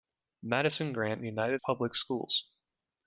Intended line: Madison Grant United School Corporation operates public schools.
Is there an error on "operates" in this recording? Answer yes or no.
yes